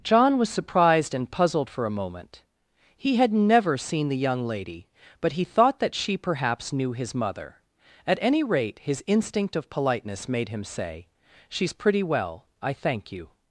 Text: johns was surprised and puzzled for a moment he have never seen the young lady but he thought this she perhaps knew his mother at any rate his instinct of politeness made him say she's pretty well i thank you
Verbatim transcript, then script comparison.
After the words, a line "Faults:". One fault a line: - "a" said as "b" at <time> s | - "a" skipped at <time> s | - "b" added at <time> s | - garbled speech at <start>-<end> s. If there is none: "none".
john was surprised and puzzled for a moment he had never seen the young lady but he thought that she perhaps knew his mother at any rate his instinct of politeness made him say she's pretty well i thank you
Faults:
- "johns" said as "john" at 0.0 s
- "have" said as "had" at 3.1 s
- "this" said as "that" at 5.8 s